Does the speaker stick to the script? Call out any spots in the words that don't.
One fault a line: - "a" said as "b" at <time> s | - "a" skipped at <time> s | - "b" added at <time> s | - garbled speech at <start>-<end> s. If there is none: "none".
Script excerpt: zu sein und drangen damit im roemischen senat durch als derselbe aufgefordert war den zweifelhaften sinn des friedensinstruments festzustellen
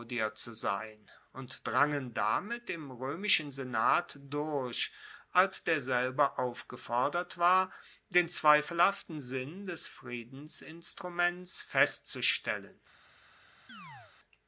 none